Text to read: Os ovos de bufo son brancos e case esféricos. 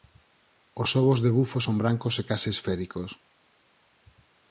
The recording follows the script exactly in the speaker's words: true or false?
true